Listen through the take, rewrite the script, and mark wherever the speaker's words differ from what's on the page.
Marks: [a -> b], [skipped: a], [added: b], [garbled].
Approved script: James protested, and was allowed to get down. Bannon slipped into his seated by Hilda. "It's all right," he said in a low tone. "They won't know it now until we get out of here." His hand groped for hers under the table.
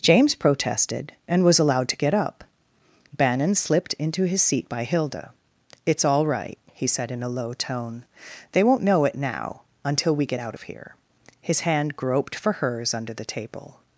James protested, and was allowed to get [down. -> up] Bannon slipped into his [seated -> seat] by Hilda. "It's all right," he said in a low tone. "They won't know it now until we get out of here." His hand groped for hers under the table.